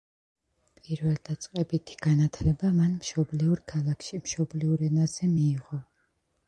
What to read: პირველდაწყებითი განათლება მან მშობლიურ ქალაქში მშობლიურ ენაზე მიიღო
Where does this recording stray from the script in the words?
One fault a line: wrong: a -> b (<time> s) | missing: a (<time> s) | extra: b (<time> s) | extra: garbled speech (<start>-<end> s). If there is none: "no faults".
no faults